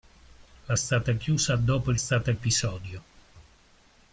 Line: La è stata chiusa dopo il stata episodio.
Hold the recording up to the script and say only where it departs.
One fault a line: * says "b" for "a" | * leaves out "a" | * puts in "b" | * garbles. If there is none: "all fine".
all fine